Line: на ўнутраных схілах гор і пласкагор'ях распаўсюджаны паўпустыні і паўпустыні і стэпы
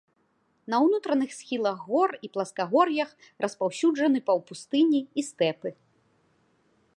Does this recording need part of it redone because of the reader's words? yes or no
yes